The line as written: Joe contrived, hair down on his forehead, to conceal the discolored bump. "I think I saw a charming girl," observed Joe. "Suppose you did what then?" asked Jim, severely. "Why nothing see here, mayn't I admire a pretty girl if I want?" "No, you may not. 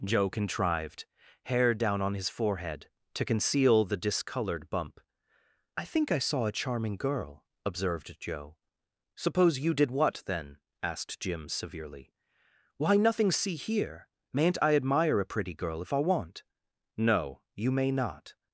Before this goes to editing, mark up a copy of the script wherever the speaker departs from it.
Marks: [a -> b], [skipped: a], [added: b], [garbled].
Joe contrived, hair down on his forehead, to conceal the discolored bump. "I think I saw a charming girl," observed Joe. "Suppose you did what then?" asked Jim, severely. "Why nothing see here, mayn't I admire a pretty girl if I want?" "No, you may not.